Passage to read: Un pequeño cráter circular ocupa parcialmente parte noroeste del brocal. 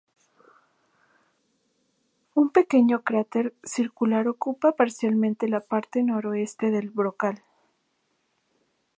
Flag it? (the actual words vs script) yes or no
yes